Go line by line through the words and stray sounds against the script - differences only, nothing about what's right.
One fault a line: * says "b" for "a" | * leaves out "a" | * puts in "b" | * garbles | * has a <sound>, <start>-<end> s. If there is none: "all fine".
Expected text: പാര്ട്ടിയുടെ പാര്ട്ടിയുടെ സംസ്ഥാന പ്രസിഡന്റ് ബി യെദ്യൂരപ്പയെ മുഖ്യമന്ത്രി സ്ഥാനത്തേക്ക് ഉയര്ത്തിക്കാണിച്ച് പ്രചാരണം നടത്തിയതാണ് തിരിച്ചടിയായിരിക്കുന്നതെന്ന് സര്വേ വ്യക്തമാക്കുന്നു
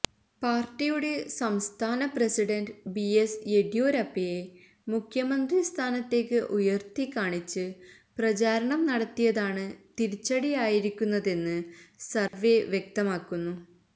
* leaves out "പാര്ട്ടിയുടെ"
* puts in "എസ്"
* has a dropout, 12.3-12.3 s